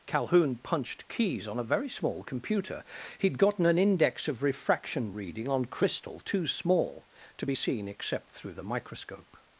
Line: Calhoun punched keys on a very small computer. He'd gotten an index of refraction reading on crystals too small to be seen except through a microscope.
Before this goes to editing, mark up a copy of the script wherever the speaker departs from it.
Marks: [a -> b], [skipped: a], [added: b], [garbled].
Calhoun punched keys on a very small computer. He'd gotten an index of refraction reading on [crystals -> crystal] too small to be seen except through [a -> the] microscope.